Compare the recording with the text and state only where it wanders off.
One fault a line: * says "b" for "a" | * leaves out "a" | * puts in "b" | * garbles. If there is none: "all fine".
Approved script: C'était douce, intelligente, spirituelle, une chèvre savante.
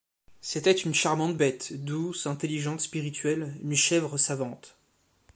* puts in "une charmante bête"